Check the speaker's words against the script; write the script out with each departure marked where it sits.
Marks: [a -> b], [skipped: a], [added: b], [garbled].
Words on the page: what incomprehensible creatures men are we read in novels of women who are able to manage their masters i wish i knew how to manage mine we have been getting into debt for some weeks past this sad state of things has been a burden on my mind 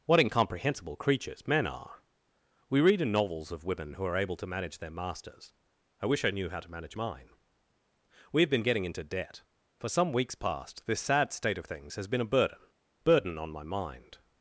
what incomprehensible creatures men are we read in novels of women who are able to manage their masters i wish i knew how to manage mine we have been getting into debt for some weeks past this sad state of things has been a burden [added: burden] on my mind